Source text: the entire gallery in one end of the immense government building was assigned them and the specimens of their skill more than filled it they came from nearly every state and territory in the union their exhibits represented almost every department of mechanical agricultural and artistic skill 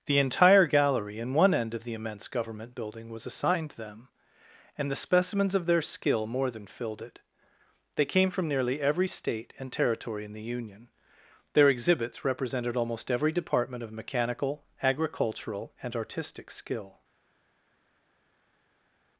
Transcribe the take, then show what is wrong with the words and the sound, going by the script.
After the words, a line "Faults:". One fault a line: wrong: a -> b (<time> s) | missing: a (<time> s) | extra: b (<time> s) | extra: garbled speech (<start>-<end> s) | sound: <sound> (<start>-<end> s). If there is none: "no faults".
the entire gallery in one end of the immense government building was assigned them and the specimens of their skill more than filled it they came from nearly every state and territory in the union their exhibits represented almost every department of mechanical agricultural and artistic skill
Faults:
no faults